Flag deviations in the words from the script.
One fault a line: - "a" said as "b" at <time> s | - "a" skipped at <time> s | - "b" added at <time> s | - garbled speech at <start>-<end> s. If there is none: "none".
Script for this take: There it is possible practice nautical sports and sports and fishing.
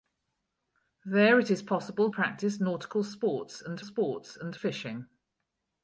none